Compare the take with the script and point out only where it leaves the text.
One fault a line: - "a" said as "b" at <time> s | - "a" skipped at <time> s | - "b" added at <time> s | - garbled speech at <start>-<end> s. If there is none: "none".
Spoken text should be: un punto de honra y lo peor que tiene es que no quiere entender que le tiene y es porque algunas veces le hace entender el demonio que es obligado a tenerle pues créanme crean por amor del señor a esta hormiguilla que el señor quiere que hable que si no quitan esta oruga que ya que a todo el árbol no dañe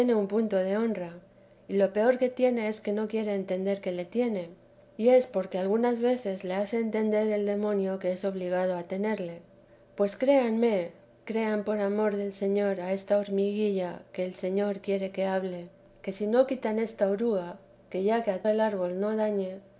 - "todo" skipped at 18.4 s